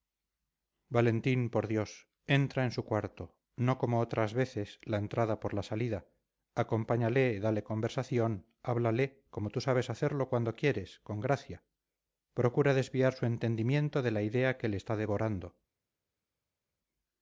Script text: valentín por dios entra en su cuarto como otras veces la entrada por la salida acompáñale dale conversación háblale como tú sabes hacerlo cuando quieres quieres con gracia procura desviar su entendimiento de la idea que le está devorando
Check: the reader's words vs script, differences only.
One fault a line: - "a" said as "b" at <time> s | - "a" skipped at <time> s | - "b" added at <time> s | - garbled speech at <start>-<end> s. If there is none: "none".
- "no" added at 3.5 s
- "quieres" skipped at 11.0 s